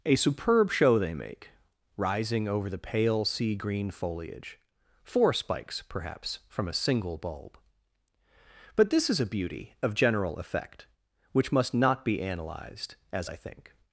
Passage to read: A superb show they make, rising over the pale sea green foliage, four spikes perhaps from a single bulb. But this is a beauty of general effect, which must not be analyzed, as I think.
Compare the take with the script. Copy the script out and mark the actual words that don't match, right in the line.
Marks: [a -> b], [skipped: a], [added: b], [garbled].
A superb show they make, rising over the pale sea green foliage, four spikes perhaps from a single bulb. But this is a beauty of general effect, which must not be analyzed, as I think.